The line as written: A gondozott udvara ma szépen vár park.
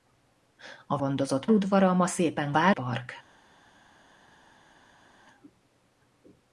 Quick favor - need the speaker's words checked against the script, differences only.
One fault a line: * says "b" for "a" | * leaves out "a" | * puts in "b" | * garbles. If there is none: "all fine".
all fine